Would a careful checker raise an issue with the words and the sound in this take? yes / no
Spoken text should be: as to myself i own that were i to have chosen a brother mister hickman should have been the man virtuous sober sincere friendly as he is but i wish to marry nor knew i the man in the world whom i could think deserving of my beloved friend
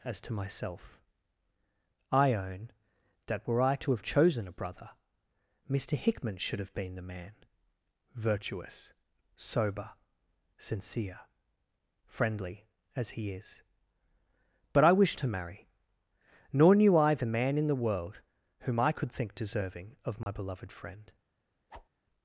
yes